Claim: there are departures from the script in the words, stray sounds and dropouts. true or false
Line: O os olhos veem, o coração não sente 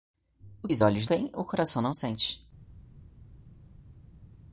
false